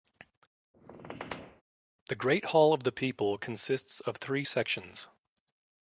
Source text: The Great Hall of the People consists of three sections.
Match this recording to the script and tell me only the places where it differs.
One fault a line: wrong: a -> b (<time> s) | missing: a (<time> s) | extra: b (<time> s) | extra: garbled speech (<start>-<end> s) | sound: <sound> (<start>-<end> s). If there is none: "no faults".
sound: squeak (0.7-1.6 s)